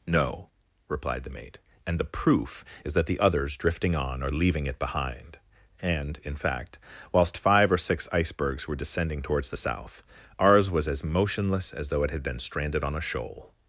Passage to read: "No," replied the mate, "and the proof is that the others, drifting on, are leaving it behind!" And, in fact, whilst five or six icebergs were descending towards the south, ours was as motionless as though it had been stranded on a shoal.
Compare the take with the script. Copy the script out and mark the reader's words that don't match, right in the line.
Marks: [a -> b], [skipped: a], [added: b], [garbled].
"No," replied the mate, "and the proof is that the others, drifting on, are leaving it behind!" And, in fact, whilst five or six icebergs were descending towards the south, ours was as motionless as though it had been stranded on a shoal.